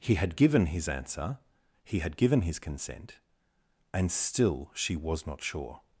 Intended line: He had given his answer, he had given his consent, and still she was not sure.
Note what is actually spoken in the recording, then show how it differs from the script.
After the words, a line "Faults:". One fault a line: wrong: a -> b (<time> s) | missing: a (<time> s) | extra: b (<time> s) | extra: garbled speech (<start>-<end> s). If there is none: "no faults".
He had given his answer, he had given his consent, and still she was not sure.
Faults:
no faults